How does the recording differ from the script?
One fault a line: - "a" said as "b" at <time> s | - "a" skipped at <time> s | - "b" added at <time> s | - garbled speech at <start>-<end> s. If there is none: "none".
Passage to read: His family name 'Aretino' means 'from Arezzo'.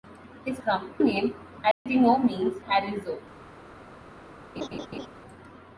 - "family" said as "from" at 0.6 s
- "from" skipped at 2.6 s